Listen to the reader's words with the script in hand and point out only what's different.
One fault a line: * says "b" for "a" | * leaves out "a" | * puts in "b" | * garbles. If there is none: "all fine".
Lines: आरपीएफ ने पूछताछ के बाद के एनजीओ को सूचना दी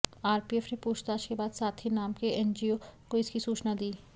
* puts in "साथी नाम"
* puts in "इसकी"